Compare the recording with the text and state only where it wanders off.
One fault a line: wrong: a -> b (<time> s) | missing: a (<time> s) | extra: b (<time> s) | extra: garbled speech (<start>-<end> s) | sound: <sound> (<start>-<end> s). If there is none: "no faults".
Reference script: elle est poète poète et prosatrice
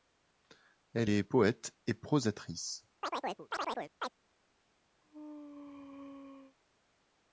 missing: poète (1.8 s)
sound: chirp (3.0-4.1 s)
sound: sneeze (5.0-6.6 s)